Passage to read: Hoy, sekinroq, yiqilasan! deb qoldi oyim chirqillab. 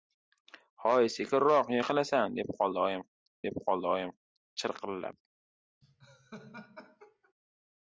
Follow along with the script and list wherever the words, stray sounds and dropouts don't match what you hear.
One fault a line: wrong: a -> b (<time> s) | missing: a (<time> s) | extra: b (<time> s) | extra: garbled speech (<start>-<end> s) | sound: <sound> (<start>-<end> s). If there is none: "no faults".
extra: deb qoldi oyim (3.5 s)
sound: laugh (5.8-7.3 s)